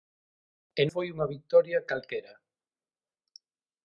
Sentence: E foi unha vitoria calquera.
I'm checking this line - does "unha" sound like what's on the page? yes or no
yes